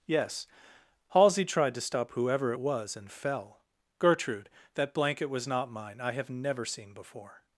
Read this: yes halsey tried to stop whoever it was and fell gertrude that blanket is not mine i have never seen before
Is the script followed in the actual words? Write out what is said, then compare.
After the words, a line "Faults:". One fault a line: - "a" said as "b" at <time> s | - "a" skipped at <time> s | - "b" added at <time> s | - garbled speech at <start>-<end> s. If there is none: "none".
yes halsey tried to stop whoever it was and fell gertrude that blanket was not mine i have never seen before
Faults:
- "is" said as "was" at 5.3 s